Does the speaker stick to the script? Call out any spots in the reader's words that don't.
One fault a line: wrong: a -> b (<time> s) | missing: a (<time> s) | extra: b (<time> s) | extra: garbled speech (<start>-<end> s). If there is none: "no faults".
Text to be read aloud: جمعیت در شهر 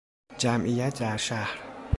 no faults